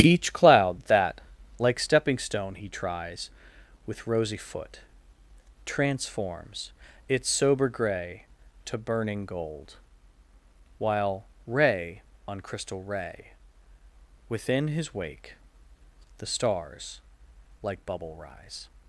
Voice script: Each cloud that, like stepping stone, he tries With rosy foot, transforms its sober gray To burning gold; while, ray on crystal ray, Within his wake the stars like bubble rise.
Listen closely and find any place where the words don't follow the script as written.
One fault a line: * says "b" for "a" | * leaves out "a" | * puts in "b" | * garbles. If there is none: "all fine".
all fine